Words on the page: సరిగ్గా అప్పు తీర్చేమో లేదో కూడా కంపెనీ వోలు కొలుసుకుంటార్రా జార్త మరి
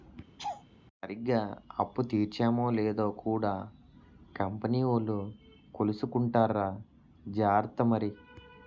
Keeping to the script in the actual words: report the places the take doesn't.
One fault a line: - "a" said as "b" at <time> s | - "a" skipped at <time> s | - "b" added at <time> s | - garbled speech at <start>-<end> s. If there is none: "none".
none